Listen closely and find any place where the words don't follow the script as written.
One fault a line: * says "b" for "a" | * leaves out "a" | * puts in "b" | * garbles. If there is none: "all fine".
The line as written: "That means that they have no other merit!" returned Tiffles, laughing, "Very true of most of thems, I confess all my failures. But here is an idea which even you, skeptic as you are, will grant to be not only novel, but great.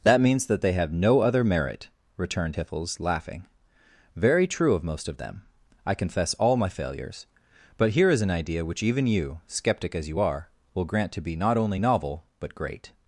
* says "them" for "thems"